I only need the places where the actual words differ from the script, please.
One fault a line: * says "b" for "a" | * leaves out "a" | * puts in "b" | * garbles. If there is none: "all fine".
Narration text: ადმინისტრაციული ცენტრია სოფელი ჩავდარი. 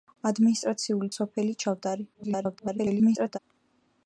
* leaves out "ცენტრია"
* garbles